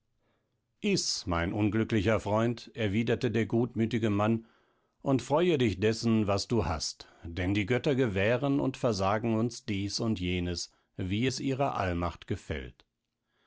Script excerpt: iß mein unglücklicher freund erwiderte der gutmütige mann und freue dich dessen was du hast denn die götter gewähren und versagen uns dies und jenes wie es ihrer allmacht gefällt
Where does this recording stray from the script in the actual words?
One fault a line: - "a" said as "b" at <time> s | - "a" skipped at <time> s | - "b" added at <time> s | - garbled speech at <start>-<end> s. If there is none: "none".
none